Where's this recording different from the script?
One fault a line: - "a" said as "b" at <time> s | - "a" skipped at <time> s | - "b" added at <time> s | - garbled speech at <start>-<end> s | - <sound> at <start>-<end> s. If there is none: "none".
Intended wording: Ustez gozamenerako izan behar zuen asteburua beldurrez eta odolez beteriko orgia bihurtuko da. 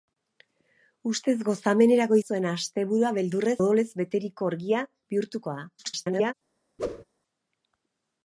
- "izan behar" skipped at 2.2 s
- "eta" skipped at 3.6 s
- garbled speech at 5.8-6.3 s
- whoosh at 6.8-7.0 s